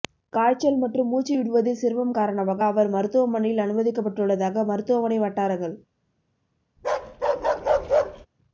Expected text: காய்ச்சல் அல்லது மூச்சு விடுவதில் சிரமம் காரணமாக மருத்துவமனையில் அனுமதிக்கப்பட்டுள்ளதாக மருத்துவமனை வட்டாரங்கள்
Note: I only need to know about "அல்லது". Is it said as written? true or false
false